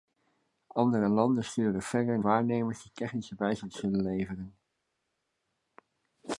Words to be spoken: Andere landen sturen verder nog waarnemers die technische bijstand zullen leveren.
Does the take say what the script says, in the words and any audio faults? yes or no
no